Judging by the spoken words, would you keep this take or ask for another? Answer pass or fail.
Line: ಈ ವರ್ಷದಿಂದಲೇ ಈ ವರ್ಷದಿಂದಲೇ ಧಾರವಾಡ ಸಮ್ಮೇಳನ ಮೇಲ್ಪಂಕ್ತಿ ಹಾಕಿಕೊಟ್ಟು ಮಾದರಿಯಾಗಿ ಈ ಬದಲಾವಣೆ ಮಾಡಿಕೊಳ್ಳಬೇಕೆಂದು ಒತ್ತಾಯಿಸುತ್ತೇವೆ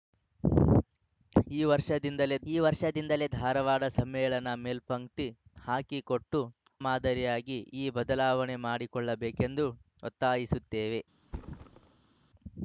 pass